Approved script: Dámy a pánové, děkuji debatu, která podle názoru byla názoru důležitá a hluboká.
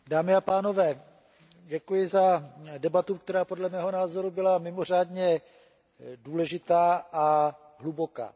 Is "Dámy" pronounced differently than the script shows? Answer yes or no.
no